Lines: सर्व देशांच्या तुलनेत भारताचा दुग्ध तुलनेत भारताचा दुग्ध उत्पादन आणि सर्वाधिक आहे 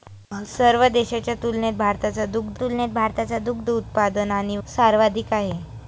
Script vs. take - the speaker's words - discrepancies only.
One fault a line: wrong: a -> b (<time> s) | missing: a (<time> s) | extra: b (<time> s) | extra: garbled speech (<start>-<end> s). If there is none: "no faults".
no faults